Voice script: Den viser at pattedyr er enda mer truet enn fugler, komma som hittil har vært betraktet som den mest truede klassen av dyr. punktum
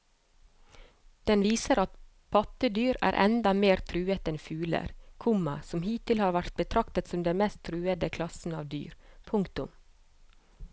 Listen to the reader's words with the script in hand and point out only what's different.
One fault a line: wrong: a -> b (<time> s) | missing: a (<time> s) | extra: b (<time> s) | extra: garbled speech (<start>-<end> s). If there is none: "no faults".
no faults